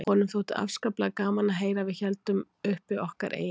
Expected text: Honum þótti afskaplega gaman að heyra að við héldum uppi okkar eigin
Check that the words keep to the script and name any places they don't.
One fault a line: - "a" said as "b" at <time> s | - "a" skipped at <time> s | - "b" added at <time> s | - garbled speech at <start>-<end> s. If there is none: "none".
none